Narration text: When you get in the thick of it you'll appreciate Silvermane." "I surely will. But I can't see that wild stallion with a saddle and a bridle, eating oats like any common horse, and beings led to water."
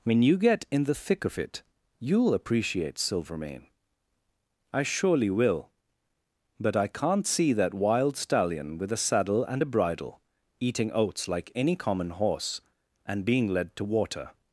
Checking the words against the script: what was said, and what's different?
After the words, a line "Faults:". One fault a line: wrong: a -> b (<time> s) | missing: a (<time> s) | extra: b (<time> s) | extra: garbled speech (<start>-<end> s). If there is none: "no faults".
When you get in the thick of it you'll appreciate Silvermane." "I surely will. But I can't see that wild stallion with a saddle and a bridle, eating oats like any common horse, and being led to water."
Faults:
wrong: beings -> being (13.2 s)